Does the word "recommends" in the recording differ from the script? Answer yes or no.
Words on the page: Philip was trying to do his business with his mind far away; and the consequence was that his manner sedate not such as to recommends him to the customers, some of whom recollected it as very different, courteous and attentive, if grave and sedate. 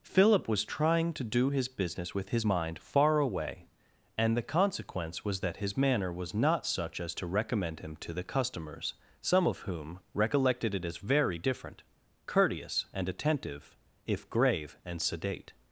yes